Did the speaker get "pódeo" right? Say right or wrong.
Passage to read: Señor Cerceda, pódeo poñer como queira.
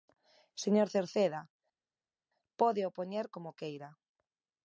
right